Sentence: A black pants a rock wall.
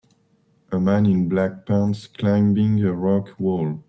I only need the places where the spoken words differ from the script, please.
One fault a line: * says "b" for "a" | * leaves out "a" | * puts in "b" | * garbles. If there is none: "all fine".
* puts in "man in"
* puts in "climbing"